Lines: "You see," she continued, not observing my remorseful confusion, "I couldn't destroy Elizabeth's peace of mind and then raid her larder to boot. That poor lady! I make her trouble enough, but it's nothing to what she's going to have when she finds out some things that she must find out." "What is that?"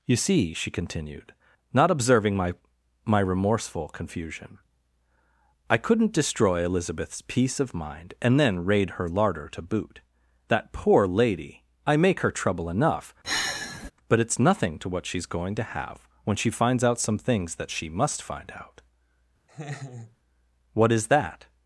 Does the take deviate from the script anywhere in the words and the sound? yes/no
yes